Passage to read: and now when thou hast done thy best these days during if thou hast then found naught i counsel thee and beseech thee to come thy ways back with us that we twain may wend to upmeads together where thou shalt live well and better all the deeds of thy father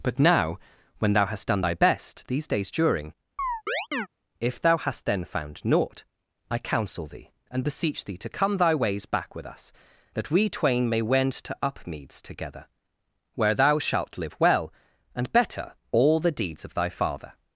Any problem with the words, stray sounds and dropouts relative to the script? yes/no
yes